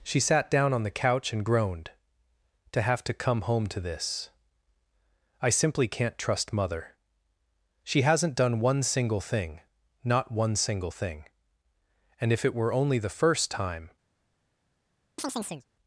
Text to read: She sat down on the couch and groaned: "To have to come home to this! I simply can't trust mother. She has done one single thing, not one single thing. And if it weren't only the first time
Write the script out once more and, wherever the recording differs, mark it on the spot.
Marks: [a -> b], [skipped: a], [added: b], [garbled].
She sat down on the couch and groaned: "To have to come home to this! I simply can't trust mother. She [has -> hasn't] done one single thing, not one single thing. And if it [weren't -> were] only the first time